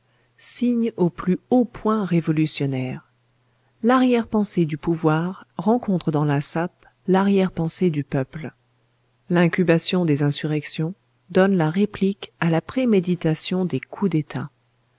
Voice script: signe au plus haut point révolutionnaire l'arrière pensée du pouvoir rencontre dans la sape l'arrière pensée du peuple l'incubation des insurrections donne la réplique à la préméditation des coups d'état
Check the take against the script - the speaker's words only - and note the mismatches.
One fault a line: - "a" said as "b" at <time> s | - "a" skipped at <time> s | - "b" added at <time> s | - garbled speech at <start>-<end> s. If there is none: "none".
none